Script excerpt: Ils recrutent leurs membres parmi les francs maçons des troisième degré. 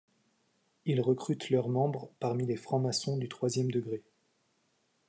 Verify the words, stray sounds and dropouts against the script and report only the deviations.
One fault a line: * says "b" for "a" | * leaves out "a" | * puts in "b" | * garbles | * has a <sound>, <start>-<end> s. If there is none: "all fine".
* says "du" for "des"